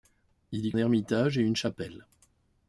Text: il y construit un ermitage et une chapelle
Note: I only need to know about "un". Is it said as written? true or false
false